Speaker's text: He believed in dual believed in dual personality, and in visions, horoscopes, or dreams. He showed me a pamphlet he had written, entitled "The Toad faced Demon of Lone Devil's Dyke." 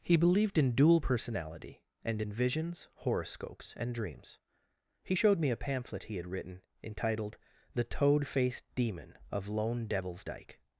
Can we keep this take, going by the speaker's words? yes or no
no